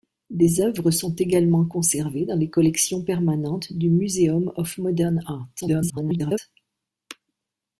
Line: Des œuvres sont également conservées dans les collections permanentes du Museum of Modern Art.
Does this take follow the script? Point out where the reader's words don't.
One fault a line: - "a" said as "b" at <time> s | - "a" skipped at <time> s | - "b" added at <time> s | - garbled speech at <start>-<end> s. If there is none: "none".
- garbled speech at 5.6-6.4 s